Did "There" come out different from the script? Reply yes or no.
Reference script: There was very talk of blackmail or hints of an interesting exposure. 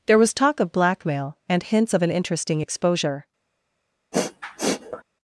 no